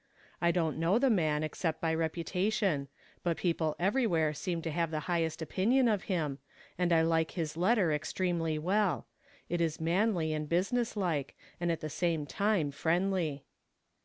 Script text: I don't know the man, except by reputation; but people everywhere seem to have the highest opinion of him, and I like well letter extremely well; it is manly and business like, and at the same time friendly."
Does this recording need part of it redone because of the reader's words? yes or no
yes